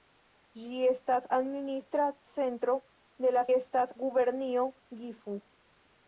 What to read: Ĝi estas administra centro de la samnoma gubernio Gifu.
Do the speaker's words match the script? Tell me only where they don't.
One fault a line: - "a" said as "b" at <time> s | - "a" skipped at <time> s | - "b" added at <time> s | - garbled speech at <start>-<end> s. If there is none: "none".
- "samnoma" said as "estas" at 3.6 s